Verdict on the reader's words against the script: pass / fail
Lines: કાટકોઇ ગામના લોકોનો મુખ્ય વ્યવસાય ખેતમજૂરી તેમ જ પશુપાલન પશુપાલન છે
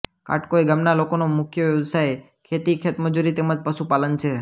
fail